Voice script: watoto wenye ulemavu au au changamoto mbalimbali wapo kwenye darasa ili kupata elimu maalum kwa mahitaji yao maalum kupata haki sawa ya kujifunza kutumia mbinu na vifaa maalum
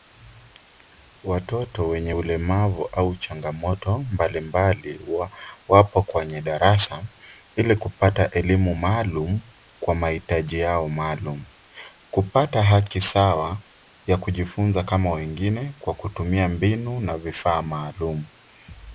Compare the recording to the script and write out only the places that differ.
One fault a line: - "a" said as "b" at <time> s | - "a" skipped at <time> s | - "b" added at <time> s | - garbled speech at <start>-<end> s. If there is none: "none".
- "au" skipped at 3.2 s
- "kama wengine kwa" added at 14.8 s